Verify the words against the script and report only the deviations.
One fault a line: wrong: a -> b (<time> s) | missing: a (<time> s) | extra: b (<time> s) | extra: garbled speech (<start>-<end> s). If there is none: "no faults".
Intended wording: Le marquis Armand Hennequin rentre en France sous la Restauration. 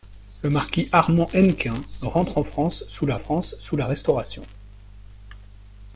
extra: France sous la (3.2 s)